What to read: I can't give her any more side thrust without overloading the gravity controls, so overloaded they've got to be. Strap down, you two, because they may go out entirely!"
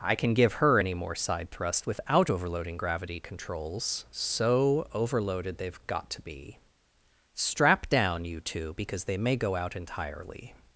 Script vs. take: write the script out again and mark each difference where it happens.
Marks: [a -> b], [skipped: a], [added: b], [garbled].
I [can't -> can] give her any more side thrust without overloading [skipped: the] gravity controls, so overloaded they've got to be. Strap down, you two, because they may go out entirely!"